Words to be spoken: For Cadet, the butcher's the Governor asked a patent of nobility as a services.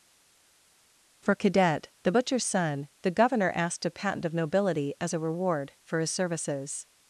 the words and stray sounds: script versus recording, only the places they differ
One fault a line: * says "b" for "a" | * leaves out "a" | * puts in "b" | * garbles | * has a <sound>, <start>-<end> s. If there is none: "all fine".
* puts in "son"
* puts in "reward for his"